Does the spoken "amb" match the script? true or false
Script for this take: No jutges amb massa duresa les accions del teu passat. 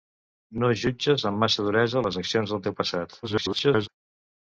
true